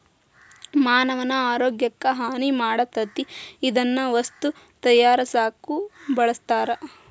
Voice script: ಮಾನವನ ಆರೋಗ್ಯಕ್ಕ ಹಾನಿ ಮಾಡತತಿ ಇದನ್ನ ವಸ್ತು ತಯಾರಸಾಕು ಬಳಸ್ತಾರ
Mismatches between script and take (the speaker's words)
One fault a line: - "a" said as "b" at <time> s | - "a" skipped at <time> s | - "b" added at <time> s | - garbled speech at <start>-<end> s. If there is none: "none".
none